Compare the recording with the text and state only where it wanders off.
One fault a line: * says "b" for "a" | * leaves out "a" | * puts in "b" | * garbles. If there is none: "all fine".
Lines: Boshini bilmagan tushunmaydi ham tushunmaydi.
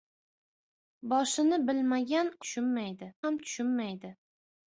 all fine